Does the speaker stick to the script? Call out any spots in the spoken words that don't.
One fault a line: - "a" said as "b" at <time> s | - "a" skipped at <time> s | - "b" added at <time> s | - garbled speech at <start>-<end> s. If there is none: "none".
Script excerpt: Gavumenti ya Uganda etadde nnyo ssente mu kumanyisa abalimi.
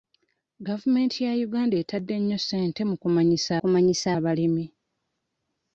- "kumanyisa" added at 3.6 s